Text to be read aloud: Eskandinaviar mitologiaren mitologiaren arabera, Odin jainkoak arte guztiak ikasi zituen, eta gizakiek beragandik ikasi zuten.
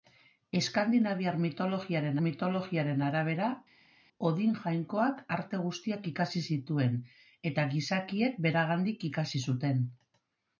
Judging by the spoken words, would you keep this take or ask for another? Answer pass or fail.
pass